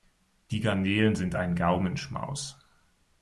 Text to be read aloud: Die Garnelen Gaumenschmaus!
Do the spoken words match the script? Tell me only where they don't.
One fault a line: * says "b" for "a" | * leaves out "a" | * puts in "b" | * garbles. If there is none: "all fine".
* puts in "sind ein"